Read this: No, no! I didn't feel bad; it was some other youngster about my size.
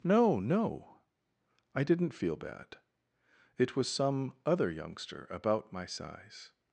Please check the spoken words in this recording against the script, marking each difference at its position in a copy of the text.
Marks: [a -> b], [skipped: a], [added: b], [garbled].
No, no! I didn't feel bad; it was some other youngster about my size.